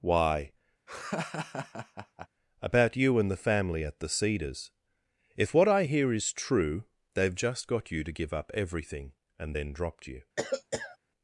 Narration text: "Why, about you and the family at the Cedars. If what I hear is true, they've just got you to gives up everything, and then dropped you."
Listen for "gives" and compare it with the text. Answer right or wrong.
wrong